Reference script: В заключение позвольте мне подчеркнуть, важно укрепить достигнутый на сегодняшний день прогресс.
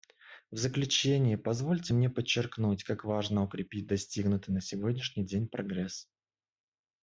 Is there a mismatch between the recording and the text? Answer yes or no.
yes